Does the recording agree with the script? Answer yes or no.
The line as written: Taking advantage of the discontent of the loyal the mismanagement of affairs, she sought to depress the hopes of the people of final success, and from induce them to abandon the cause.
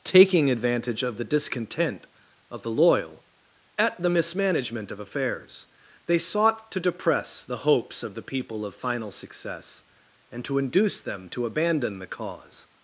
no